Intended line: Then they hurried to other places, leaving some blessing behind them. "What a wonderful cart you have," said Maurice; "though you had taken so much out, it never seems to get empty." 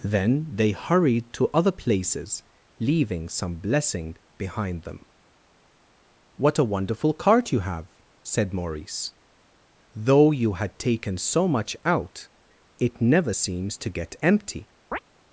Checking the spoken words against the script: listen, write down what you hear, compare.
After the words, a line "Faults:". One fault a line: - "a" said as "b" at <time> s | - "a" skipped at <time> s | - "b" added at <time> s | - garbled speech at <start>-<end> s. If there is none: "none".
Then they hurried to other places, leaving some blessing behind them. "What a wonderful cart you have," said Maurice; "though you had taken so much out, it never seems to get empty."
Faults:
none